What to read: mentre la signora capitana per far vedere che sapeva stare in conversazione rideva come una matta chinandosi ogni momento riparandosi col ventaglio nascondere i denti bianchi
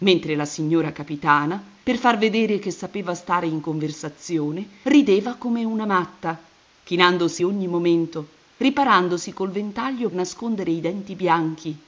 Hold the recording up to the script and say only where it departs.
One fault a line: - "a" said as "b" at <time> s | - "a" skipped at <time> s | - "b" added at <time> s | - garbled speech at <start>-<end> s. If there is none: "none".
none